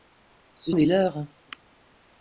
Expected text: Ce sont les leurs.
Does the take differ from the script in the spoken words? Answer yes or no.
yes